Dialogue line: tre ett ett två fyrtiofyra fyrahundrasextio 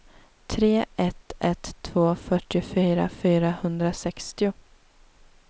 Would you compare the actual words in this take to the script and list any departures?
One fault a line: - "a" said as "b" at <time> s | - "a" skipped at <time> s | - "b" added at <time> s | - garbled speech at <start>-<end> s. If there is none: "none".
none